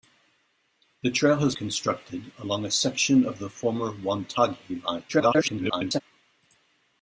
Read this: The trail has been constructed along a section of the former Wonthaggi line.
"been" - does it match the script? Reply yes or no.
no